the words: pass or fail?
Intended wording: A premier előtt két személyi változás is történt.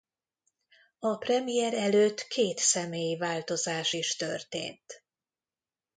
pass